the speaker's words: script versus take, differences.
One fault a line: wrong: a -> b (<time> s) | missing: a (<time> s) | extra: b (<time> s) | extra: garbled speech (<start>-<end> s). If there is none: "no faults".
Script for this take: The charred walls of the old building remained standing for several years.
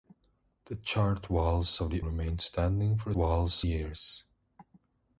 missing: old building (2.0 s)
wrong: several -> walls (3.1 s)